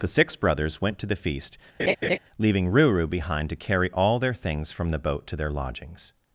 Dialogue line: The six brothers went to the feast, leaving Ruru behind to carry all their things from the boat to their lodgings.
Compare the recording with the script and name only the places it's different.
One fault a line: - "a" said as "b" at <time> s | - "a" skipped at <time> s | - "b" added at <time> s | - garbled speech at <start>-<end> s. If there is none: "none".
none